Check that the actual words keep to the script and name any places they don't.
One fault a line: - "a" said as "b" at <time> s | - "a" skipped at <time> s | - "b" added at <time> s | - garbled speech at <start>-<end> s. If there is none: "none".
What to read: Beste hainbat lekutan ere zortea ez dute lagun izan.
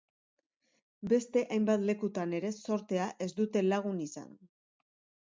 none